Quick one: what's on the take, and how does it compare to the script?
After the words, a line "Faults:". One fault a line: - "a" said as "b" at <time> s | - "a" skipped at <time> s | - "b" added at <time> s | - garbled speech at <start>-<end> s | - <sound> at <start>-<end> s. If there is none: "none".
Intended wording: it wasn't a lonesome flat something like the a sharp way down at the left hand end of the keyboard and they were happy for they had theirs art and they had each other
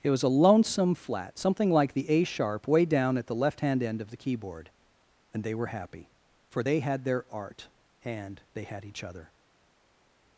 it was a lonesome flat something like the a sharp way down at the left hand end of the keyboard and they were happy for they had their art and they had each other
Faults:
- "wasn't" said as "was" at 0.1 s
- "theirs" said as "their" at 7.0 s